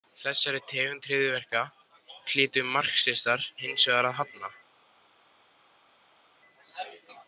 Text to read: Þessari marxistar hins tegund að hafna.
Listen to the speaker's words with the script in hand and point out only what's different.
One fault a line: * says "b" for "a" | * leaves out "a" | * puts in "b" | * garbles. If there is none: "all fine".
* puts in "tegund hryðjuverka hlytu"
* says "vegar" for "tegund"